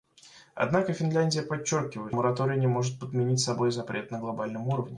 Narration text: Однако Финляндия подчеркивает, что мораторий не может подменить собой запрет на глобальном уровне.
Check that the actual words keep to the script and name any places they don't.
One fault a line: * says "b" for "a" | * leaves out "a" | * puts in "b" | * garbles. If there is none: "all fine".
* leaves out "что"